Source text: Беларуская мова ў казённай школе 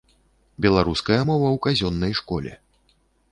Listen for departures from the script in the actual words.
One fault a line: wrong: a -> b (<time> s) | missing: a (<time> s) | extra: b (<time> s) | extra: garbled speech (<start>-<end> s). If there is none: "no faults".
no faults